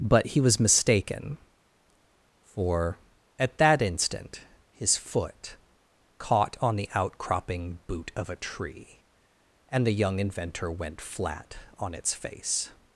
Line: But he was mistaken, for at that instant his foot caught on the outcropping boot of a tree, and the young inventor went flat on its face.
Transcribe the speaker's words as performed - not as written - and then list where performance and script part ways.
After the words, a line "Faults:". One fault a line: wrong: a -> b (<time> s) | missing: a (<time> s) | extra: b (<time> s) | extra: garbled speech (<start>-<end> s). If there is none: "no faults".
But he was mistaken, for at that instant his foot caught on the outcropping boot of a tree, and the young inventor went flat on its face.
Faults:
no faults